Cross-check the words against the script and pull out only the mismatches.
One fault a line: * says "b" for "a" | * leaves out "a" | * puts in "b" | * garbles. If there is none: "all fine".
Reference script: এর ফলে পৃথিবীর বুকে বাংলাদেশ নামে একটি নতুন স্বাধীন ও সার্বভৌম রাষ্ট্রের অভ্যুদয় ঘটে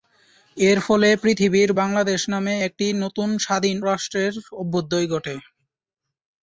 * leaves out "বুকে"
* leaves out "ও সার্বভৌম"